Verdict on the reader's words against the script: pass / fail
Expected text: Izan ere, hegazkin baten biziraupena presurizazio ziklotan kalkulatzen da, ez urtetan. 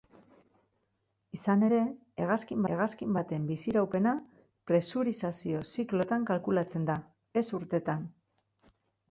fail